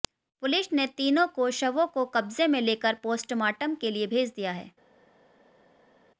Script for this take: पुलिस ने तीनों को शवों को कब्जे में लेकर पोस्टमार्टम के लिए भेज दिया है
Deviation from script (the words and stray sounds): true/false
false